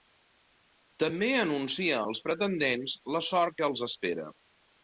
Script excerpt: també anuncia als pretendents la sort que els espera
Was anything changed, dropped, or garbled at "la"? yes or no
no